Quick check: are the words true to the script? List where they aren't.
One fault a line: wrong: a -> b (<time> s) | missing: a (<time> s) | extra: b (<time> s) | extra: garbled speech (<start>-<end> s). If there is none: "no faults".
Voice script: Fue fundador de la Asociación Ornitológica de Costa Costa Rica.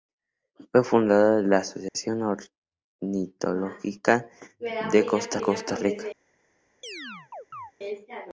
no faults